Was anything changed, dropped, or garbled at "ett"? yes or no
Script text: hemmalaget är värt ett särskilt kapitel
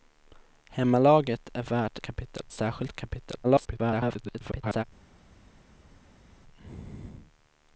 yes